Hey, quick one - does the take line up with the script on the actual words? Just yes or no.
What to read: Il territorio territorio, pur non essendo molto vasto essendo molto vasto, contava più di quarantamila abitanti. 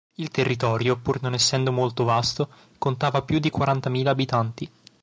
no